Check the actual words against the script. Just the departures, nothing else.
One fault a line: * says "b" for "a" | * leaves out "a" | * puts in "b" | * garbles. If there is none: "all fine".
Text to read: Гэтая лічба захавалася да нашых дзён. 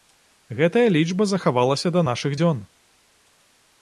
all fine